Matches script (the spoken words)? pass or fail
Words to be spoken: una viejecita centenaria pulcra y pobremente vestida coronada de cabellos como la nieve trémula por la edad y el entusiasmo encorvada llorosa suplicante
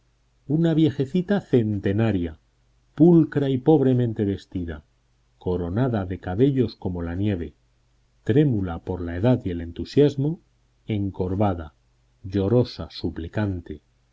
pass